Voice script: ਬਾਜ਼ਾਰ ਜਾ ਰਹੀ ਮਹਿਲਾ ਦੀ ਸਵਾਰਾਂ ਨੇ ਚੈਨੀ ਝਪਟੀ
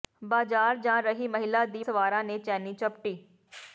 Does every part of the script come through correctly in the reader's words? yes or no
yes